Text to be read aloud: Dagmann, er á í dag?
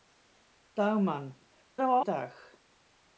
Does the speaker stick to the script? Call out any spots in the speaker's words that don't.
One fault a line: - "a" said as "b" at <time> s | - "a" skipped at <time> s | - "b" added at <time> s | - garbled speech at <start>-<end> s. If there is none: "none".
none